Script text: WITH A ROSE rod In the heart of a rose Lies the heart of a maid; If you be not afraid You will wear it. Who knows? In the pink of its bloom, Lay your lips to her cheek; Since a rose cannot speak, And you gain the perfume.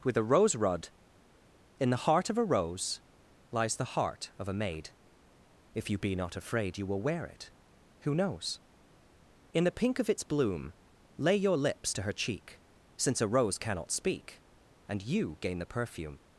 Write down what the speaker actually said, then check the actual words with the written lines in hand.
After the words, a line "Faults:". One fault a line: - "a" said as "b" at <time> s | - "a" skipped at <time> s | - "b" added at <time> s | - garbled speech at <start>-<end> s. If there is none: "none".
WITH A ROSE rod In the heart of a rose Lies the heart of a maid; If you be not afraid You will wear it. Who knows? In the pink of its bloom, Lay your lips to her cheek; Since a rose cannot speak, And you gain the perfume.
Faults:
none